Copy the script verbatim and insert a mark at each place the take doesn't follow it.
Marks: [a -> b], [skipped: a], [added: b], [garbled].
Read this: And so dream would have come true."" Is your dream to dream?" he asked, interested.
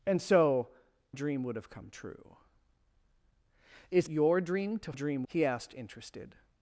And so dream would have come true."" Is your dream to dream?" he asked, interested.